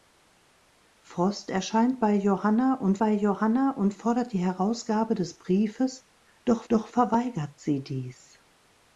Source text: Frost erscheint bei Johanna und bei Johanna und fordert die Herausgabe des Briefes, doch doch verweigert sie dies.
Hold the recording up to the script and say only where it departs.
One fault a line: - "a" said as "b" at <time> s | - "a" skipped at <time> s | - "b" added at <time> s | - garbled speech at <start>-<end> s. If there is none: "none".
none